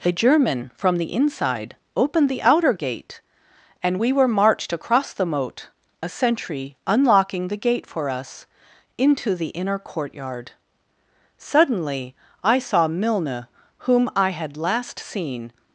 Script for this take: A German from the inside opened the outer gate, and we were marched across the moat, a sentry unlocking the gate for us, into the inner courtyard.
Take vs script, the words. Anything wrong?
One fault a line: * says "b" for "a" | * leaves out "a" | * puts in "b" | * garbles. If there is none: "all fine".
* puts in "Suddenly I saw Milne whom I had last seen"